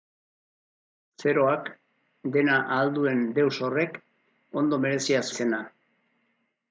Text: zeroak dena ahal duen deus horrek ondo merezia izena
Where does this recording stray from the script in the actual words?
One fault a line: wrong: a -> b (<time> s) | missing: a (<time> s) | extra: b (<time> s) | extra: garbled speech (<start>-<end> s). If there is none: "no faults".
no faults